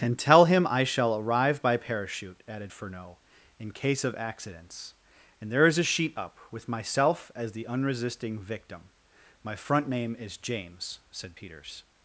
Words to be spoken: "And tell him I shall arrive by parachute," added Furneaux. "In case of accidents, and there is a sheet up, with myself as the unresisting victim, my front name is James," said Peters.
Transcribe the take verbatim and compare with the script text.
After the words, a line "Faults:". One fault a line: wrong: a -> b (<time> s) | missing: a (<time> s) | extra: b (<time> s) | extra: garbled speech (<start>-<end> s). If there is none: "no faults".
"And tell him I shall arrive by parachute," added Furneaux. "In case of accidents, and there is a sheet up, with myself as the unresisting victim, my front name is James," said Peters.
Faults:
no faults